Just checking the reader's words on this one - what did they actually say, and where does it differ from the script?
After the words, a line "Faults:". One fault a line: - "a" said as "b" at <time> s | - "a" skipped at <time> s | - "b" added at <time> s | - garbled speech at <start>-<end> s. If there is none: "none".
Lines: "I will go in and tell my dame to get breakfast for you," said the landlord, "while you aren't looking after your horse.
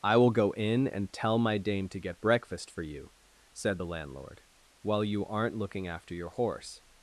"I will go in and tell my dame to get breakfast for you," said the landlord, "while you aren't looking after your horse.
Faults:
none